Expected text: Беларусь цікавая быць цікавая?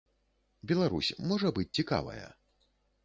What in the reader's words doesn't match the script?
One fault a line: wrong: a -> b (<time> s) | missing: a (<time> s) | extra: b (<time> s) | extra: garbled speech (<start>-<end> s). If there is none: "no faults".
wrong: цікавая -> можа (1.3 s)